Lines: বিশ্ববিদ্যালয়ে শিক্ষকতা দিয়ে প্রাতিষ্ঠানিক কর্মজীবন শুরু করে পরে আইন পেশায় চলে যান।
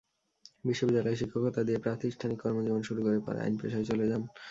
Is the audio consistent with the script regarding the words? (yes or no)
yes